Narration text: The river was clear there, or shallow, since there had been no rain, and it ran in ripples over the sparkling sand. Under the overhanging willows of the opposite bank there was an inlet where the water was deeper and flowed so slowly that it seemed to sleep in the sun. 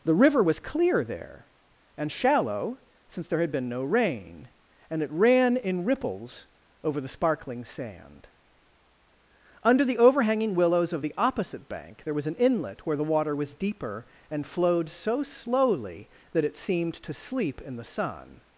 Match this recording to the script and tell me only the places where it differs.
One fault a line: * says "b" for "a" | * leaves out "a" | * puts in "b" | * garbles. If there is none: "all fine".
* says "and" for "or"